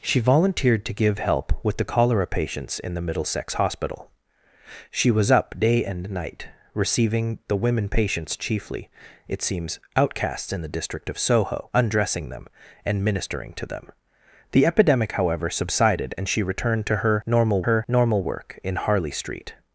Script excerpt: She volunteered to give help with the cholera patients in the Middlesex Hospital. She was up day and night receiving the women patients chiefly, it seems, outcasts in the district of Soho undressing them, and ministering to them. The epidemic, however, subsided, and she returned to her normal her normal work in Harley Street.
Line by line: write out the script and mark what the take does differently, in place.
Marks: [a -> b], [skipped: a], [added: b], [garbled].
She volunteered to give help with the cholera patients in the Middlesex Hospital. She was up day and night receiving the women patients chiefly, it seems, outcasts in the district of Soho undressing them, and ministering to them. The epidemic, however, subsided, and she returned to her normal her normal work in Harley Street.